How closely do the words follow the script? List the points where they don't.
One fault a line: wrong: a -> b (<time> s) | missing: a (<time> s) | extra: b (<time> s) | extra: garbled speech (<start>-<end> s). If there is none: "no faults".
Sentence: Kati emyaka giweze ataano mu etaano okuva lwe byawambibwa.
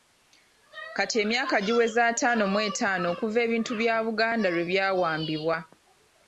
extra: ebintu bya Buganda (3.5 s)